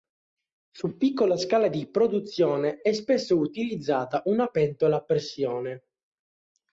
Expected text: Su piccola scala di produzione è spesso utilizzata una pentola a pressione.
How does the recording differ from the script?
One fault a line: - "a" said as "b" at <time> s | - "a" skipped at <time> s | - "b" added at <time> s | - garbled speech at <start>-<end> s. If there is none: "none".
none